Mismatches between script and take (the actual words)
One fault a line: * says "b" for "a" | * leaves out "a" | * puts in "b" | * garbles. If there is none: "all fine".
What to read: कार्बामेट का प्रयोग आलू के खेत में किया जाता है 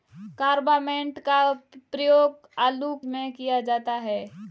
* leaves out "के खेत"